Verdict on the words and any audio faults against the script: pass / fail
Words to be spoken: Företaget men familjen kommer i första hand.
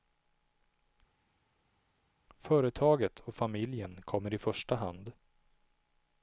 fail